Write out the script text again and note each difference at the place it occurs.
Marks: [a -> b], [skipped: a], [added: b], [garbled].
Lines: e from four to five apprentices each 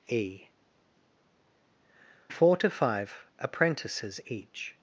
e [skipped: from] four to five apprentices each